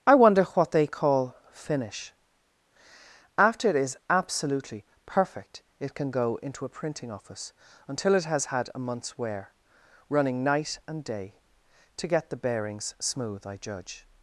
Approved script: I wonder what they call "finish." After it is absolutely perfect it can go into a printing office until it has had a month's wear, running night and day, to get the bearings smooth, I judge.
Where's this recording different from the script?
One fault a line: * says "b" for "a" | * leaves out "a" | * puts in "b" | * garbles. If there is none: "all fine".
all fine